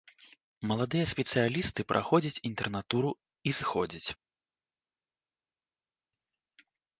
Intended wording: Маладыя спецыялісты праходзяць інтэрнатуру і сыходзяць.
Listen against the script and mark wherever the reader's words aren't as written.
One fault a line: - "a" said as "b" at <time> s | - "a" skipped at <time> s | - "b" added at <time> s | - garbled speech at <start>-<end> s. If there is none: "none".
none